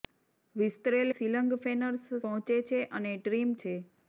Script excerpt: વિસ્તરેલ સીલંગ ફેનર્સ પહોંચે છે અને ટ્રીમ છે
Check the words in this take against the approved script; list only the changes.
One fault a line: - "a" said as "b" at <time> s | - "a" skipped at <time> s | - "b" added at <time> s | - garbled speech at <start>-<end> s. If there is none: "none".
none